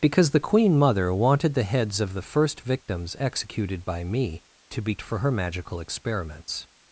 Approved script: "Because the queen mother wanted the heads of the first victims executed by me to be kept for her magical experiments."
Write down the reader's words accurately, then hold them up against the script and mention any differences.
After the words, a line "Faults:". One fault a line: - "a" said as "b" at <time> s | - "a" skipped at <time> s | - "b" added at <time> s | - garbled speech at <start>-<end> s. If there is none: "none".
"Because the queen mother wanted the heads of the first victims executed by me to be for her magical experiments."
Faults:
- "kept" skipped at 5.0 s